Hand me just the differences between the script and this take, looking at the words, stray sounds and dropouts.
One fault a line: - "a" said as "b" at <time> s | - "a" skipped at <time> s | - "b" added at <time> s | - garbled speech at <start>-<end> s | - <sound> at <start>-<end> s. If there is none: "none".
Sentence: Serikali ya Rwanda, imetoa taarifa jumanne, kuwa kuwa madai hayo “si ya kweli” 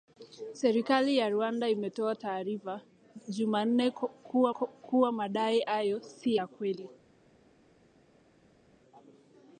none